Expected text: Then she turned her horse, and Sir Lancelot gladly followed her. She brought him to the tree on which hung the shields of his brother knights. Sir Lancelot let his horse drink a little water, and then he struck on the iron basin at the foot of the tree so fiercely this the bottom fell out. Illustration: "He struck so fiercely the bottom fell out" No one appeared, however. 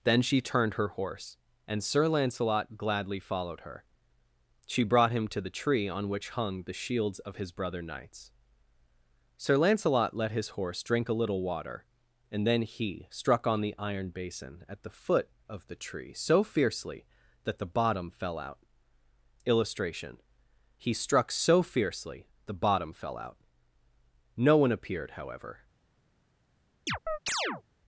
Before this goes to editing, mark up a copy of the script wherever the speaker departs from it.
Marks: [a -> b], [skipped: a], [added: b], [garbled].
Then she turned her horse, and Sir Lancelot gladly followed her. She brought him to the tree on which hung the shields of his brother knights. Sir Lancelot let his horse drink a little water, and then he struck on the iron basin at the foot of the tree so fiercely [this -> that] the bottom fell out. Illustration: "He struck so fiercely the bottom fell out" No one appeared, however.